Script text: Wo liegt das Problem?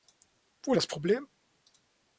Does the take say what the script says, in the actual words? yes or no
no